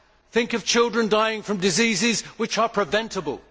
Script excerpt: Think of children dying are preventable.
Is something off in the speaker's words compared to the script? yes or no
yes